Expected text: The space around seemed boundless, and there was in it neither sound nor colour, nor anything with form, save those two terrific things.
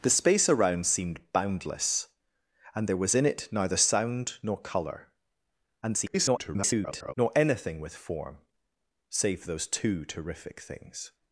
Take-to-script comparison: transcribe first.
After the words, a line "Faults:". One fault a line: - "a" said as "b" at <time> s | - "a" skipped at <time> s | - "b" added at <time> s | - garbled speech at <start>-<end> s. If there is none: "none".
The space around seemed boundless, and there was in it neither sound nor colour, [garbled] nor anything with form, save those two terrific things.
Faults:
- garbled speech at 5.8-7.1 s